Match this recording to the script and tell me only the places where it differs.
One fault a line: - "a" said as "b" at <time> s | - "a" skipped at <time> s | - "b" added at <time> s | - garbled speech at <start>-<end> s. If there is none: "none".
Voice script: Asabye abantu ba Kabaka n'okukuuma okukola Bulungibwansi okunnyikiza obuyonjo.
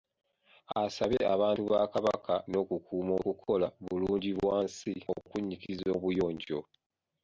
none